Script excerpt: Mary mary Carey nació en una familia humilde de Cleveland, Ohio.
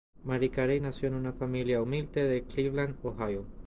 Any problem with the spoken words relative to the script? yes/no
yes